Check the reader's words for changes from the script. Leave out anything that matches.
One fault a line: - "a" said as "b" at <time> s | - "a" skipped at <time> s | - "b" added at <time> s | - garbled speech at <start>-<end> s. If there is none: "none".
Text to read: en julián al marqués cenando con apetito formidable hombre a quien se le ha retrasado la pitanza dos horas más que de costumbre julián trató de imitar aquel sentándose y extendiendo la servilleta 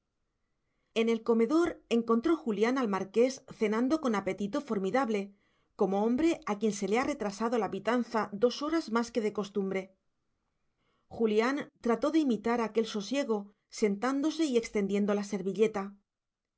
- "el comedor encontró" added at 1.1 s
- "como" added at 5.8 s
- "sosiego" added at 12.9 s